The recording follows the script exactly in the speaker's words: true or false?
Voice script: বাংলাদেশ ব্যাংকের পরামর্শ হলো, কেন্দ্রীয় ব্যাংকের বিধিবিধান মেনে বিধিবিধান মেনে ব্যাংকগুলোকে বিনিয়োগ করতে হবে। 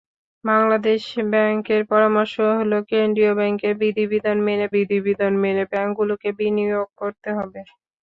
true